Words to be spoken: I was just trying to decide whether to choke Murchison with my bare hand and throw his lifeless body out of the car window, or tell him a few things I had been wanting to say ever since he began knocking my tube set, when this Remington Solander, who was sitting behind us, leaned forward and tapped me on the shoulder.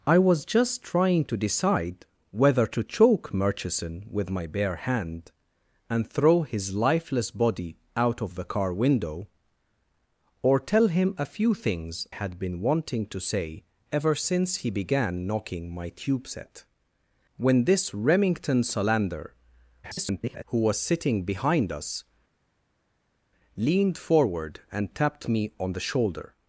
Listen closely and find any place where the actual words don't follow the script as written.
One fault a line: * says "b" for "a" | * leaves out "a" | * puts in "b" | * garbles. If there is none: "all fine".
* leaves out "I"
* garbles